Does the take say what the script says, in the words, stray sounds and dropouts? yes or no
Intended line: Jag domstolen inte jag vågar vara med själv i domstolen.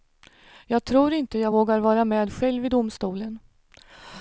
no